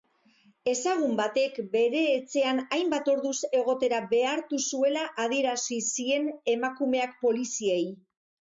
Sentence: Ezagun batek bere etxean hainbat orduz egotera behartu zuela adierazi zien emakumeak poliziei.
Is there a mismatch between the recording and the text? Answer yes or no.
no